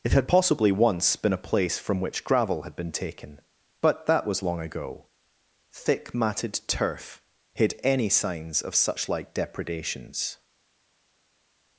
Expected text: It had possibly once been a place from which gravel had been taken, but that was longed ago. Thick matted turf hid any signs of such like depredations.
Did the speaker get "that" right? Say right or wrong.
right